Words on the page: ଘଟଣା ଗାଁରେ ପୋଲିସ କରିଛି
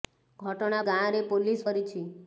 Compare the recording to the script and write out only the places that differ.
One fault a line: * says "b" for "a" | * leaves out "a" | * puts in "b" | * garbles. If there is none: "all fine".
all fine